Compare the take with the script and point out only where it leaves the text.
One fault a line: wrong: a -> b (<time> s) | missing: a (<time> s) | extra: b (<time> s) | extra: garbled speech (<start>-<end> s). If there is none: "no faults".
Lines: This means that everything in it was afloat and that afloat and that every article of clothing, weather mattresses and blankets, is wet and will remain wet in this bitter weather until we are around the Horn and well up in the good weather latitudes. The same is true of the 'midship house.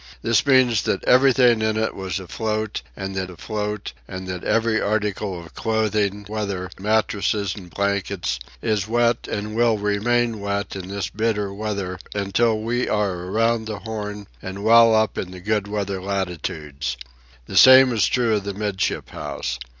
no faults